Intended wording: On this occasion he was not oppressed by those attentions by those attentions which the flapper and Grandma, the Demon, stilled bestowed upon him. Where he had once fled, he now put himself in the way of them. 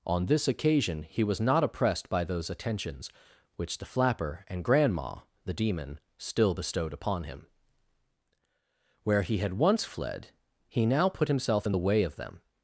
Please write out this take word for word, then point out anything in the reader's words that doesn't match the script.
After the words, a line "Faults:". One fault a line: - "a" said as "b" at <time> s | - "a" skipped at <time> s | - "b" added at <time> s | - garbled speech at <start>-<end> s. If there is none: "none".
On this occasion he was not oppressed by those attentions which the flapper and Grandma, the Demon, still bestowed upon him. Where he had once fled, he now put himself in the way of them.
Faults:
- "by those attentions" skipped at 3.1 s
- "stilled" said as "still" at 6.2 s